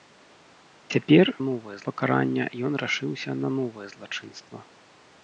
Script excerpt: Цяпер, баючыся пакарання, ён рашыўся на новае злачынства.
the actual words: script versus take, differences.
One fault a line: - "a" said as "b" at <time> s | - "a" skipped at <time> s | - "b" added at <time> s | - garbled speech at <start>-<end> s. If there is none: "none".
- "баючыся" said as "новае" at 1.5 s